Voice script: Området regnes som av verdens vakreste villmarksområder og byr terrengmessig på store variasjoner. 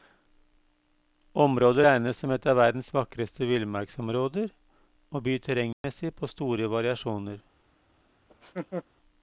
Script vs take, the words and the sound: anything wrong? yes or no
yes